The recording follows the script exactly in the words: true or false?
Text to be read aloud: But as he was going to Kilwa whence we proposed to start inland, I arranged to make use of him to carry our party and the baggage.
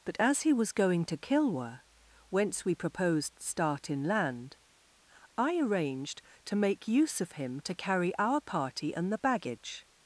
false